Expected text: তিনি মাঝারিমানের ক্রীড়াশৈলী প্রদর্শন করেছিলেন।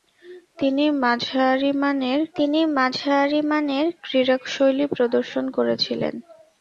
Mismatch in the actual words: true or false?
true